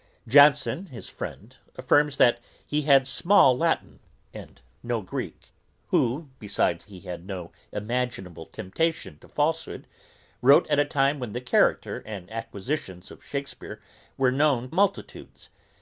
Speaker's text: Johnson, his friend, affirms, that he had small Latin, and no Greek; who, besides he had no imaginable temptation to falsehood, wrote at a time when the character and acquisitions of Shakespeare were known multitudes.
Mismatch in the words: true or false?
false